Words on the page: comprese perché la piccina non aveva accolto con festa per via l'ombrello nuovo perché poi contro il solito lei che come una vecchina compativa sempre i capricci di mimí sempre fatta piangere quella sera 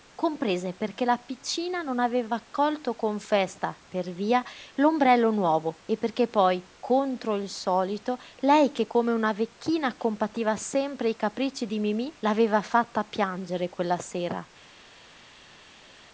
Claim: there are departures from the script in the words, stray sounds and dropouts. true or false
true